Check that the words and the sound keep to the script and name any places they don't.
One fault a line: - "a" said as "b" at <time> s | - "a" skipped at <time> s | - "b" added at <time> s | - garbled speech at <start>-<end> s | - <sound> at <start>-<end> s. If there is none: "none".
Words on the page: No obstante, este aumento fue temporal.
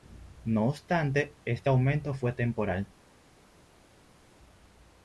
none